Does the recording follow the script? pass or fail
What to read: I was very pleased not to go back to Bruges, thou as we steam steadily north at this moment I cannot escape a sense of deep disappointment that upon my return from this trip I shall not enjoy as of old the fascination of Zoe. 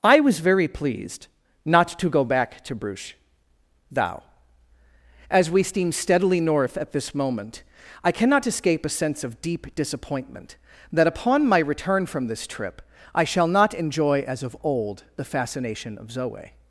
pass